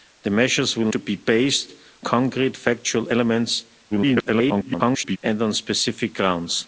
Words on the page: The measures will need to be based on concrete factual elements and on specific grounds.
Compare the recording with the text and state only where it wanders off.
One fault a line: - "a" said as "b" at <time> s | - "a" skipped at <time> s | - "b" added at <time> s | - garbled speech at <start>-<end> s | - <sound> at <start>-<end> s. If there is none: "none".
- "need" skipped at 0.9 s
- "on" skipped at 1.7 s
- garbled speech at 3.9-5.2 s